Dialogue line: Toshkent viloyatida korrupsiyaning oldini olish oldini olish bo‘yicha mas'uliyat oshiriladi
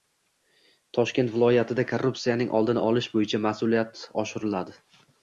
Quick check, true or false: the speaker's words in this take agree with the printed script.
false